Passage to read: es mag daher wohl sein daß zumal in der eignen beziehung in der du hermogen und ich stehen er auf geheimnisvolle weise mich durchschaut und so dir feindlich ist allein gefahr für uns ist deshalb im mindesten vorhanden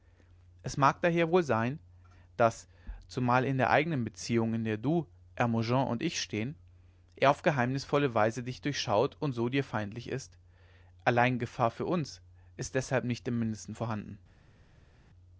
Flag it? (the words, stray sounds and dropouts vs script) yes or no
yes